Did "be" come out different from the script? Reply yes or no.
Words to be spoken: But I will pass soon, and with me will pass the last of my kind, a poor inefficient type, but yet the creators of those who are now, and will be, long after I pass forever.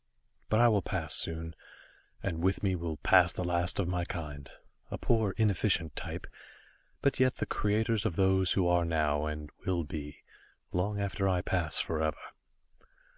no